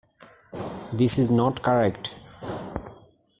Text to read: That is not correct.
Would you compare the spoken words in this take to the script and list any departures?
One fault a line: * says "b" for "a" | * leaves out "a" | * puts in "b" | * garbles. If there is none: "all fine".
* says "This" for "That"